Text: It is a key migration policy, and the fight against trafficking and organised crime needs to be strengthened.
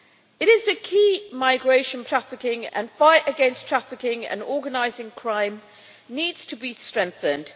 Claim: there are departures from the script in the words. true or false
true